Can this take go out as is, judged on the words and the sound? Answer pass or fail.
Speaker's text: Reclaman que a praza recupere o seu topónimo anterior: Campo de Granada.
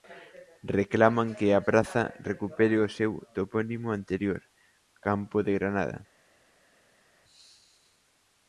pass